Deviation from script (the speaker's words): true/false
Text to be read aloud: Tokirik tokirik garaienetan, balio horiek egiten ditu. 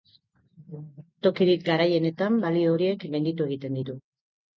true